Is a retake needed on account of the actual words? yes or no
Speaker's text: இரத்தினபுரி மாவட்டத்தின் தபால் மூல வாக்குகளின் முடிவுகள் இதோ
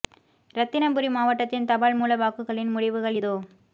no